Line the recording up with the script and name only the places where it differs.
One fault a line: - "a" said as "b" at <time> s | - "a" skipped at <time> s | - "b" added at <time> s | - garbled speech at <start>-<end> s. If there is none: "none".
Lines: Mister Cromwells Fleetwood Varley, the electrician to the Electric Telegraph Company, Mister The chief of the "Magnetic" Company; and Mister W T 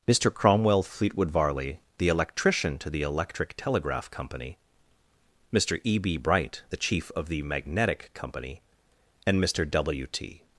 - "Cromwells" said as "Cromwell" at 0.3 s
- "E B Bright" added at 5.8 s